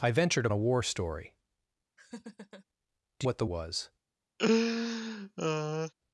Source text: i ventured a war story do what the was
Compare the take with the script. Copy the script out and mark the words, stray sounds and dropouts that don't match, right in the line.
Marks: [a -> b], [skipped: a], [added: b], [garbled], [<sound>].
i ventured a war story [laugh] do what the was [laugh]